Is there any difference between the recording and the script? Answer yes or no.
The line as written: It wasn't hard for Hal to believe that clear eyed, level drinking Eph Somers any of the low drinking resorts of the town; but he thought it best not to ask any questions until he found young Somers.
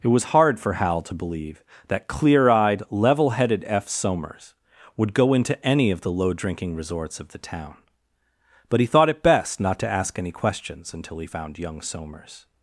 yes